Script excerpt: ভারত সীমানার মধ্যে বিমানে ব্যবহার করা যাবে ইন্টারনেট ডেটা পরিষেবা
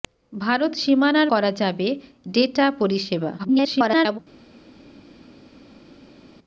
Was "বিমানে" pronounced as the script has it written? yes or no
no